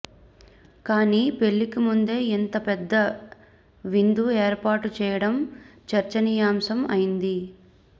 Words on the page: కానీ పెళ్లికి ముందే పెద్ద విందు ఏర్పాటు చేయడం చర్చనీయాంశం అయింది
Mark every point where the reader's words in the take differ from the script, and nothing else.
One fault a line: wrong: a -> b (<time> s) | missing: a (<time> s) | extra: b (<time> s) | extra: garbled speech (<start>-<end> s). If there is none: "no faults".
extra: ఇంత (2.3 s)